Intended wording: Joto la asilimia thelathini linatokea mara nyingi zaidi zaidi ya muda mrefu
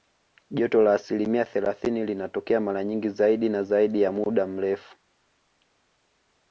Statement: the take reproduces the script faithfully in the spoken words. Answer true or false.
false